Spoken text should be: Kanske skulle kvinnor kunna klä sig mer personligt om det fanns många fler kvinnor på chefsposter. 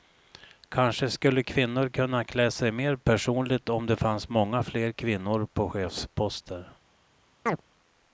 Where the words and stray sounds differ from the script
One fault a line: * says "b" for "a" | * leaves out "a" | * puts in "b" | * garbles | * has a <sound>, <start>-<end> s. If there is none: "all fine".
* has a chirp, 7.5-7.6 s